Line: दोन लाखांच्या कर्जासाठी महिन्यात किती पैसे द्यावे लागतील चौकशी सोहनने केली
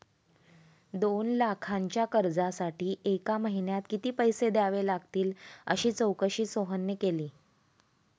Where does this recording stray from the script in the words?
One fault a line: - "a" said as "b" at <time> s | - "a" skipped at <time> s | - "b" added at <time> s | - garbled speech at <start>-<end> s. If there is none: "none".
- "एका" added at 3.0 s
- "अशी" added at 5.7 s